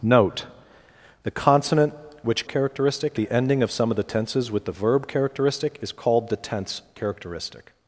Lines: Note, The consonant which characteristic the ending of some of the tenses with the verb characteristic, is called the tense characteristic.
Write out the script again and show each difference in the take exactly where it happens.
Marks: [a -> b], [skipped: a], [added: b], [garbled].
Note, The consonant which characteristic the ending of some of the tenses with the verb characteristic, is called the tense characteristic.